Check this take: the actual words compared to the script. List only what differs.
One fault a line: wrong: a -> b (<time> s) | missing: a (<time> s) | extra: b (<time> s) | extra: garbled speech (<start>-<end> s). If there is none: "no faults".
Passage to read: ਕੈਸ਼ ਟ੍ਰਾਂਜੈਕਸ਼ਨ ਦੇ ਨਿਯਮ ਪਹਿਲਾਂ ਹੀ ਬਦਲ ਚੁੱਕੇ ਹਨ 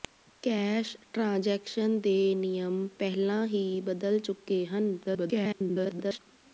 extra: garbled speech (5.0-6.2 s)